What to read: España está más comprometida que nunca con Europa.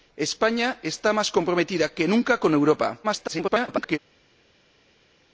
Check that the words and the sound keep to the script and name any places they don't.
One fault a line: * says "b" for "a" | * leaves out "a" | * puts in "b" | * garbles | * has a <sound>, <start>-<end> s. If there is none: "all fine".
* garbles